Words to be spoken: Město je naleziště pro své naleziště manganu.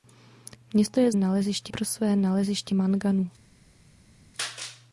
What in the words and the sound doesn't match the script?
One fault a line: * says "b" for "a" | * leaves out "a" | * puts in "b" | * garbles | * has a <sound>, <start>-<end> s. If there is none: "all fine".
all fine